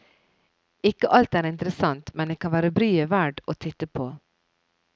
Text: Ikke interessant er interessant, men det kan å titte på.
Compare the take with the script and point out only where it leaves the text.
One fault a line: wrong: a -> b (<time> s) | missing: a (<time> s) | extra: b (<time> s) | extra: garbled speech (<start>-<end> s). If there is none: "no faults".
wrong: interessant -> alt (1.1 s)
extra: være bryet verd (2.5 s)